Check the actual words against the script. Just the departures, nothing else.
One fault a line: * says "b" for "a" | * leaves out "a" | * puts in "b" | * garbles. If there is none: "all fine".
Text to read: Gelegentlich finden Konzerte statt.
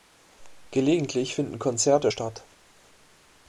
all fine